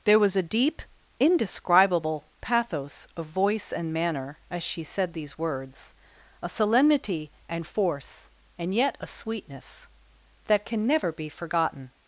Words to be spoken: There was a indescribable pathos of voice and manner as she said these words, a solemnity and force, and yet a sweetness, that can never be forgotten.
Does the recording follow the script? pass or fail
fail